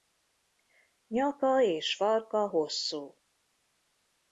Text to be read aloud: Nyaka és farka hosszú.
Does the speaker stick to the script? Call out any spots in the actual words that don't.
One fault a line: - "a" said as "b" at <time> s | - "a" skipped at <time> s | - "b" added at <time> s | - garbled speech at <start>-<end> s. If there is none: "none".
none